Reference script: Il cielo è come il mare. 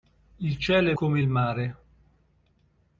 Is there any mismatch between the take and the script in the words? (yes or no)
no